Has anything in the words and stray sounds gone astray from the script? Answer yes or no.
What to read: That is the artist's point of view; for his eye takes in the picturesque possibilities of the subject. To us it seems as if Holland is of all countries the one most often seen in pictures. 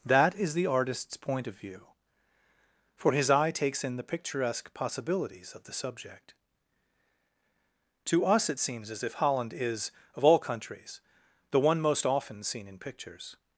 no